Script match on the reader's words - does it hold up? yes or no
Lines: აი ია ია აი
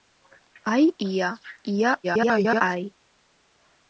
no